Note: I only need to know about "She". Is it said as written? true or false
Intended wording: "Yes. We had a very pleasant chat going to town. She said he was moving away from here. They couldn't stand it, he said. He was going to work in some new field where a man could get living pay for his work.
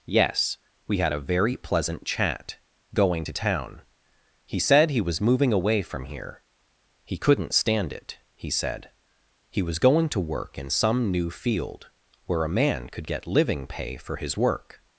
false